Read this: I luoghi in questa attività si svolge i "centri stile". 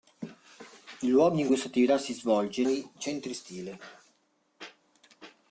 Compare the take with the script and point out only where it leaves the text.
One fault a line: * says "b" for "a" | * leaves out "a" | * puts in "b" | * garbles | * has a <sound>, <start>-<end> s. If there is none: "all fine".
all fine